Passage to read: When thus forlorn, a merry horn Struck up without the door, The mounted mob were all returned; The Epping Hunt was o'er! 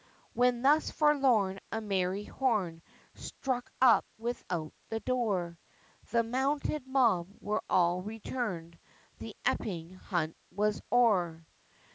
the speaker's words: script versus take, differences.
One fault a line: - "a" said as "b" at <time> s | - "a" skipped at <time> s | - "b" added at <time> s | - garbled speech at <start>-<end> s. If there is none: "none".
none